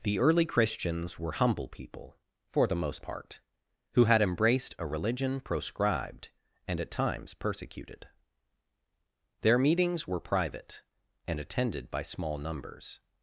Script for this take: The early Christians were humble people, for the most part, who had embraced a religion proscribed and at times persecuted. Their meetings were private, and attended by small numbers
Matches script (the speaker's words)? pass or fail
pass